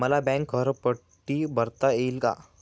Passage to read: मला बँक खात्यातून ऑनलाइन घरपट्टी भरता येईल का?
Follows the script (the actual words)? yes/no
no